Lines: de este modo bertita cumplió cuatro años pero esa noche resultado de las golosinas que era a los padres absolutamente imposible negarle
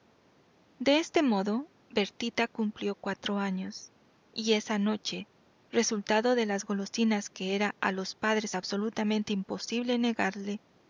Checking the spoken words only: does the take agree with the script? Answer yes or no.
no